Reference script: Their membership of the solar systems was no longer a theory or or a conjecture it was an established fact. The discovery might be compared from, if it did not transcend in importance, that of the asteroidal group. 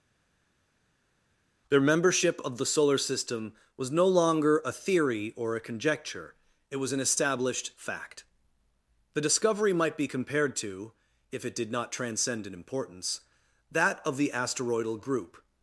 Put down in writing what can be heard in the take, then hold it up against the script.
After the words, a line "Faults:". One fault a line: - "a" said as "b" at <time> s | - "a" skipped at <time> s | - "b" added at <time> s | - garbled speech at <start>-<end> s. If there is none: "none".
Their membership of the solar system was no longer a theory or a conjecture it was an established fact. The discovery might be compared to, if it did not transcend in importance, that of the asteroidal group.
Faults:
- "systems" said as "system" at 3.0 s
- "or" skipped at 5.6 s
- "from" said as "to" at 10.6 s